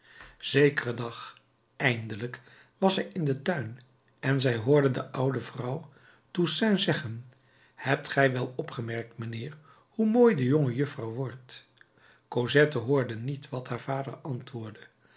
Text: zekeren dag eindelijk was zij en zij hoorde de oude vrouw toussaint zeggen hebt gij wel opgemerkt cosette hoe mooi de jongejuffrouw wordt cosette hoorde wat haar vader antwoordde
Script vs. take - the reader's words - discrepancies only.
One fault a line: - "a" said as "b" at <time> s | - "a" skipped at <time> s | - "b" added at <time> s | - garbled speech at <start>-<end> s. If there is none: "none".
- "in den tuin" added at 3.1 s
- "cosette" said as "mijnheer" at 9.2 s
- "niet" added at 13.2 s